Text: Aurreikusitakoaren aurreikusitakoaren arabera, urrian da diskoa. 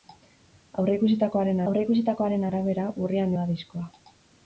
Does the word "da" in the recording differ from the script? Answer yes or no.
no